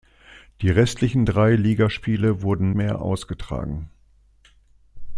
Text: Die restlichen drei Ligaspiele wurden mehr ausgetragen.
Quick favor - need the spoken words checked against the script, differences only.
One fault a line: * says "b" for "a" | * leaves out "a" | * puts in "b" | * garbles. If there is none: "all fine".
all fine